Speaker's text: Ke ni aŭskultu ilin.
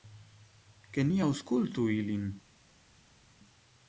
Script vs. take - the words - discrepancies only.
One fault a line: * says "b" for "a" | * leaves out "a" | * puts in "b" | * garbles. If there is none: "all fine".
all fine